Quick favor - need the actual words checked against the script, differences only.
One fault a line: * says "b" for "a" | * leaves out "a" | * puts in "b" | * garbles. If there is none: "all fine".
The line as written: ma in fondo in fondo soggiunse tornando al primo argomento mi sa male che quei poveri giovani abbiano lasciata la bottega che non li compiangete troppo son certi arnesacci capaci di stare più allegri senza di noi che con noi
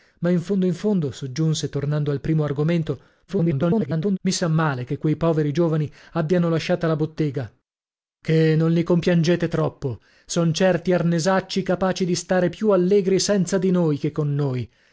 * garbles